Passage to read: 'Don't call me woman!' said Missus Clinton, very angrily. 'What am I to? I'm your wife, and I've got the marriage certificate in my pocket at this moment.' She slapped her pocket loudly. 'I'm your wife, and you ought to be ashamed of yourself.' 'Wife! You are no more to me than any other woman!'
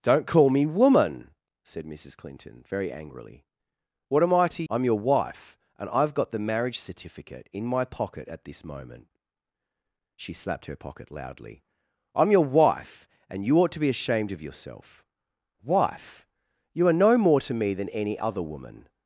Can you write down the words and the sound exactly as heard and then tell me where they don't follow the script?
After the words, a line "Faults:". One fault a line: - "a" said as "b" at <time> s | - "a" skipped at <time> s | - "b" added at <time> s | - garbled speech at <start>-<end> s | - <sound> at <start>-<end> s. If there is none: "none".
'Don't call me woman!' said Missus Clinton, very angrily. 'What am I to? I'm your wife, and I've got the marriage certificate in my pocket at this moment.' She slapped her pocket loudly. 'I'm your wife, and you ought to be ashamed of yourself.' 'Wife! You are no more to me than any other woman!'
Faults:
none